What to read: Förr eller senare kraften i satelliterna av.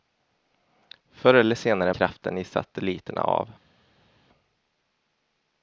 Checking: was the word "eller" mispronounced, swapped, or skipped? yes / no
no